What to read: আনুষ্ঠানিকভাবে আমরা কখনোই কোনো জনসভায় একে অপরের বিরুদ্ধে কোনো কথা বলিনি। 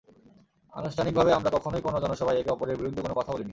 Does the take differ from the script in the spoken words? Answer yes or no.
no